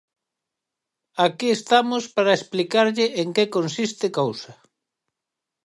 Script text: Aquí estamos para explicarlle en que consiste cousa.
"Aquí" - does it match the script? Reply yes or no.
yes